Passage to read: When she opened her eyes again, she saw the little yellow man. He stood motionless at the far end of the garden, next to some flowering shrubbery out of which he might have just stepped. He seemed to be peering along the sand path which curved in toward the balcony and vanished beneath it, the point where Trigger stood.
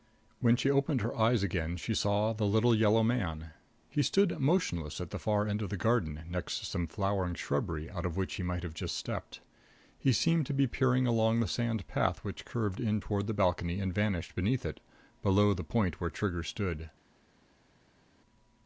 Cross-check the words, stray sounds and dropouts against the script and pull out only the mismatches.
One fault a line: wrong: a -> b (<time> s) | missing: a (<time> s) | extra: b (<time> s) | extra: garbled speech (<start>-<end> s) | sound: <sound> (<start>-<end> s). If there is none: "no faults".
extra: below (15.2 s)